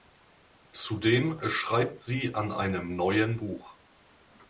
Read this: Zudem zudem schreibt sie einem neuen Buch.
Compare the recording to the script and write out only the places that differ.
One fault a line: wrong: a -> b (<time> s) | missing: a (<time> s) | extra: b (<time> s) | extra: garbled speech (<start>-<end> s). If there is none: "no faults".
missing: zudem (1.4 s)
extra: an (2.3 s)